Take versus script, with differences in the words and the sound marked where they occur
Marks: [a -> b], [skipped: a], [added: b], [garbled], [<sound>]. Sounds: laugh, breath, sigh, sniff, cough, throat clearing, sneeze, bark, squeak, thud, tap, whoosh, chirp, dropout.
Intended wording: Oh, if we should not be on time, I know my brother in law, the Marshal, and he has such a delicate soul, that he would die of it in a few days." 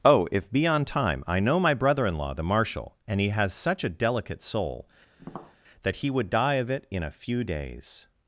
Oh, if [skipped: we should not] be on time, I know my brother in law, the Marshal, and he has such a delicate soul, [tap] that he would die of it in a few days."